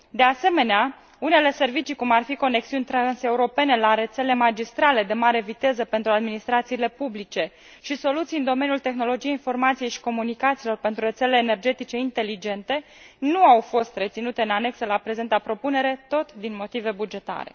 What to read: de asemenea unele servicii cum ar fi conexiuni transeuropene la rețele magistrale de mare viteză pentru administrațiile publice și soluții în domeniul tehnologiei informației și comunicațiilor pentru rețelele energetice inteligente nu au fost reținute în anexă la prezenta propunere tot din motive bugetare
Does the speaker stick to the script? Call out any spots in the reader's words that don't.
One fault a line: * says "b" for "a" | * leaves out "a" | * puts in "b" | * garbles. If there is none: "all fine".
all fine